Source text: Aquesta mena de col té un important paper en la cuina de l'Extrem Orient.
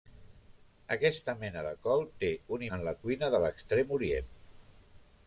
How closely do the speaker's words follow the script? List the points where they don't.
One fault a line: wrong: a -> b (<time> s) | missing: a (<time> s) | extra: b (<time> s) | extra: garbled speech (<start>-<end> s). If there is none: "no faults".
missing: important paper (2.6 s)